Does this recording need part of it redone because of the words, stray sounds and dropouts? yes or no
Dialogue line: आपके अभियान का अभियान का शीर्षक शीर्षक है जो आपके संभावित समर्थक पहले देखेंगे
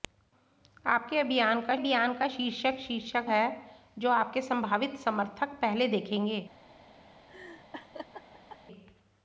yes